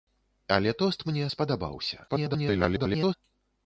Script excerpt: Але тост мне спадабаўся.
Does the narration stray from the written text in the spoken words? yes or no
yes